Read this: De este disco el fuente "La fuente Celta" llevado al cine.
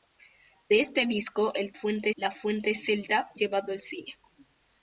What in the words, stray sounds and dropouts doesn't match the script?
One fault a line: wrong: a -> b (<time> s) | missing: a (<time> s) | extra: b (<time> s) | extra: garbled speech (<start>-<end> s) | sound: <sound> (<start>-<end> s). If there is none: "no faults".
no faults